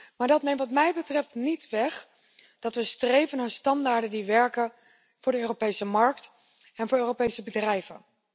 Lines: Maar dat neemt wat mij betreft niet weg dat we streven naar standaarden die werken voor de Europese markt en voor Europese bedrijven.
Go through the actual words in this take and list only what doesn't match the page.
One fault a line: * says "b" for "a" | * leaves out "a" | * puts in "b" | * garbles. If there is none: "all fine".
all fine